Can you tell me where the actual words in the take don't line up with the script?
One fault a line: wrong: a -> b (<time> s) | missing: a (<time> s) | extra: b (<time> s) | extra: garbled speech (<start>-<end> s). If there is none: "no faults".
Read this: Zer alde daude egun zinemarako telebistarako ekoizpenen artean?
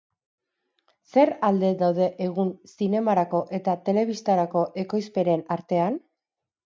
extra: eta (3.6 s)